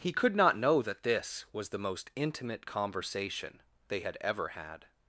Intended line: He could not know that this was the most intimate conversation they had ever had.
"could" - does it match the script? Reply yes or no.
yes